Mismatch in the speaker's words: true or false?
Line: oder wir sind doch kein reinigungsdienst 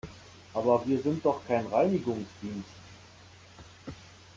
true